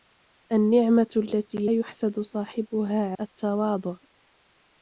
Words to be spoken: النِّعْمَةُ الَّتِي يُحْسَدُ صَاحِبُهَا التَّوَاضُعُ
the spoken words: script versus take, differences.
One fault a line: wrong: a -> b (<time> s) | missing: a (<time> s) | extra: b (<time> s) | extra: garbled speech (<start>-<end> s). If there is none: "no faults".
no faults